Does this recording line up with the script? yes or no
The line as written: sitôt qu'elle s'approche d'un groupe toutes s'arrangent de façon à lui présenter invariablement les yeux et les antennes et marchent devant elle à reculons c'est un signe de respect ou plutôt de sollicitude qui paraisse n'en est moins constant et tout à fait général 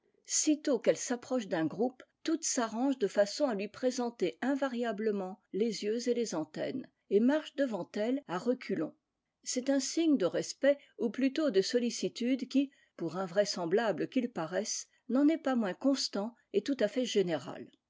no